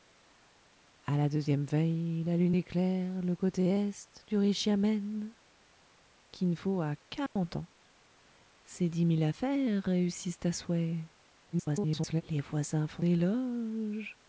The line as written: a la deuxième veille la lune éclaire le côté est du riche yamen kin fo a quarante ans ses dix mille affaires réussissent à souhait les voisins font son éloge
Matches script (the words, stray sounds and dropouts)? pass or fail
fail